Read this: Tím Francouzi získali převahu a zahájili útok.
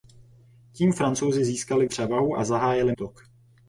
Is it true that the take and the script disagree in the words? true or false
false